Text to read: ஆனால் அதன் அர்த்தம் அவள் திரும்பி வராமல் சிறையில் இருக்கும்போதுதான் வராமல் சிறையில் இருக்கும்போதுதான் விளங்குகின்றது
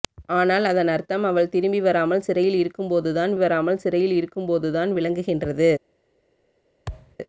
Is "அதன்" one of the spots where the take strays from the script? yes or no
no